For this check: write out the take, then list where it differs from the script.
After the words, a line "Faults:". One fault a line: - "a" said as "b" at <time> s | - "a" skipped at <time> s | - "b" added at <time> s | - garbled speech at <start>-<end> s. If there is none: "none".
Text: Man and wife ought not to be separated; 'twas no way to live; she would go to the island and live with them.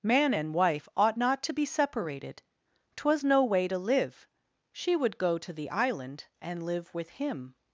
Man and wife ought not to be separated; 'twas no way to live; she would go to the island and live with him.
Faults:
- "them" said as "him" at 7.1 s